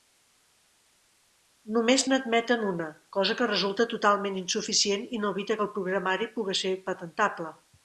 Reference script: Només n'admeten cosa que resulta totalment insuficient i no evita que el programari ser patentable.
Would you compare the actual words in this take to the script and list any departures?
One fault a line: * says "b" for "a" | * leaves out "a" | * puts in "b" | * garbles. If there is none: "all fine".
* puts in "una"
* puts in "puga"